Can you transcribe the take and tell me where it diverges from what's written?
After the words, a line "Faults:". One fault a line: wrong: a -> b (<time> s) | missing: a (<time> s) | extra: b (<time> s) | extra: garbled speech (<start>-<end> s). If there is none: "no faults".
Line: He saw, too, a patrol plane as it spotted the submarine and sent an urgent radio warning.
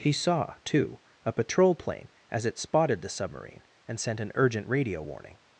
He saw, too, a patrol plane as it spotted the submarine and sent an urgent radio warning.
Faults:
no faults